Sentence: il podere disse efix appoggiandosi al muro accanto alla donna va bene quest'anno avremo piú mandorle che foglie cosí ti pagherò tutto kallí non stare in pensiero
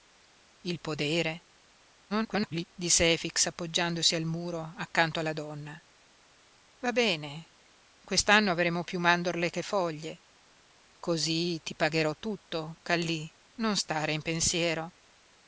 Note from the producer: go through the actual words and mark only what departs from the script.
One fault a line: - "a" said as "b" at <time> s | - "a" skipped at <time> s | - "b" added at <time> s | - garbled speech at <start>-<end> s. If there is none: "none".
- garbled speech at 2.1-2.7 s